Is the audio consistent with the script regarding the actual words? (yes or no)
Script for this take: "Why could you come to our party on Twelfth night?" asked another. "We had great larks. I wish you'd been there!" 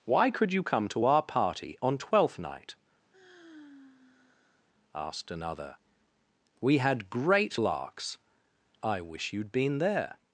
yes